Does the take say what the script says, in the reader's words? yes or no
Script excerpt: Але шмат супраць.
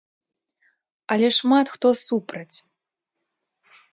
no